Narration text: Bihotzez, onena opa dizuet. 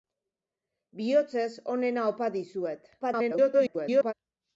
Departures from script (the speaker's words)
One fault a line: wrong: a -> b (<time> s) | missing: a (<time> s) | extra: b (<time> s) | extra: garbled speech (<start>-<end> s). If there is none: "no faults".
extra: garbled speech (3.0-4.1 s)